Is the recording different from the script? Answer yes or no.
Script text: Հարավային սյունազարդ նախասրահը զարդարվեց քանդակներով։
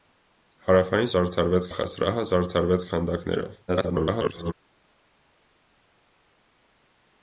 yes